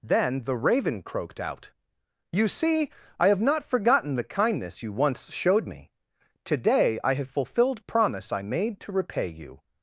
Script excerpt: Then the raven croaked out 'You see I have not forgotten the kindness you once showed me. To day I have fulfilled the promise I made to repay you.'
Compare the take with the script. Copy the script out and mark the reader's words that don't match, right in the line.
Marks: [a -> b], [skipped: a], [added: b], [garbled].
Then the raven croaked out 'You see I have not forgotten the kindness you once showed me. To day I have fulfilled [skipped: the] promise I made to repay you.'